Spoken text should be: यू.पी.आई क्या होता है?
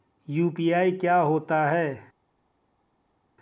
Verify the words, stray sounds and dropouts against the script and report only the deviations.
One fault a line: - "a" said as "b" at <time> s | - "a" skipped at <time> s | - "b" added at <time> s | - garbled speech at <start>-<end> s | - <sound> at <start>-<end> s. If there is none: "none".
none